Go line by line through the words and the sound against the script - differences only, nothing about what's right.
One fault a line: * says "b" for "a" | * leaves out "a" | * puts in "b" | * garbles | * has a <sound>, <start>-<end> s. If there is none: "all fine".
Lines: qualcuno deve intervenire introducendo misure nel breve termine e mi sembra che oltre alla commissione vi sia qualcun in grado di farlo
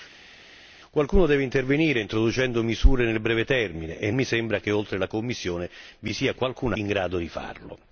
all fine